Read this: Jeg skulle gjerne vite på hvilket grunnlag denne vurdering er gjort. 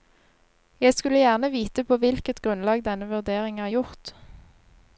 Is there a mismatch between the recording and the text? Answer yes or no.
no